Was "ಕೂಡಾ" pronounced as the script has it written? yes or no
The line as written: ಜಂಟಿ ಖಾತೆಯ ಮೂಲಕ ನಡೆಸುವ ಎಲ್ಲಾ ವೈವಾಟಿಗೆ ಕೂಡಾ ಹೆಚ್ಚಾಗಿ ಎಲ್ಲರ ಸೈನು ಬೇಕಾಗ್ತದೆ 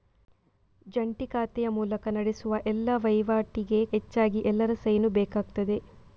no